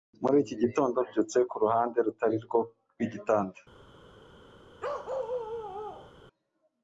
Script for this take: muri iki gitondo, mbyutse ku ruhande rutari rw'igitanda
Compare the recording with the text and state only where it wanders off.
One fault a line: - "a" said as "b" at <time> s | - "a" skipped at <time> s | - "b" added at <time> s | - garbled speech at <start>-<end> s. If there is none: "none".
- "rwo" added at 2.5 s